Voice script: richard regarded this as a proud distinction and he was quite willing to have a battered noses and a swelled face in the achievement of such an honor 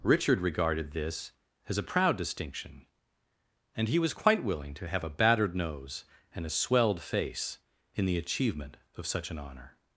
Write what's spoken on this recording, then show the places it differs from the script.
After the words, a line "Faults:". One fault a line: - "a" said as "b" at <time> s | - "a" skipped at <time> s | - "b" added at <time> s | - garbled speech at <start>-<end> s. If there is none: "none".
richard regarded this as a proud distinction and he was quite willing to have a battered nose and a swelled face in the achievement of such an honor
Faults:
- "noses" said as "nose" at 5.6 s